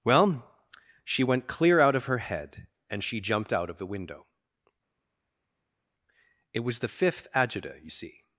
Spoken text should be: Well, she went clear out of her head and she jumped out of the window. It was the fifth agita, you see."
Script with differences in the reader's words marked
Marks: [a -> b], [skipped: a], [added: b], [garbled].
Well, she went clear out of her head and she jumped out of the window. It was the fifth agita, you see."